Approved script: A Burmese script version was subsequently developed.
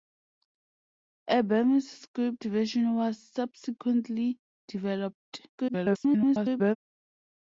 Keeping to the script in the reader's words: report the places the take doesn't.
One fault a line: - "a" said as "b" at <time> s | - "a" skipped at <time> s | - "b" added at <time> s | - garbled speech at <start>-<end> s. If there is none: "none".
- garbled speech at 5.5-6.8 s